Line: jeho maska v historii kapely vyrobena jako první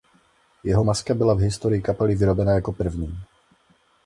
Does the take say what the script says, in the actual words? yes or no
no